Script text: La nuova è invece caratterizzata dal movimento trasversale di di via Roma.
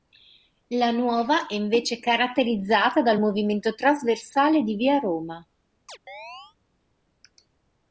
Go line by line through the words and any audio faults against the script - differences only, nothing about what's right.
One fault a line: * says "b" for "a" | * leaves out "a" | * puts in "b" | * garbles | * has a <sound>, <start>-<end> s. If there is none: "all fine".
* leaves out "di"
* has a chirp, 5.9-6.6 s